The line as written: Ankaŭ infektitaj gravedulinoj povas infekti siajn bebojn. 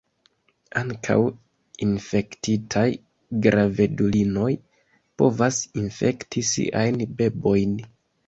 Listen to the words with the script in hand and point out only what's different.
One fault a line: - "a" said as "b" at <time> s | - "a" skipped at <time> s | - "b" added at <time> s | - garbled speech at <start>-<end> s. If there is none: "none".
none